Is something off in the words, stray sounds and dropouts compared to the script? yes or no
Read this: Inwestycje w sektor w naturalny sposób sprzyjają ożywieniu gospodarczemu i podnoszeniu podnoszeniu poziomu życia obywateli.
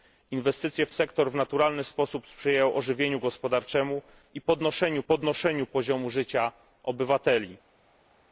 no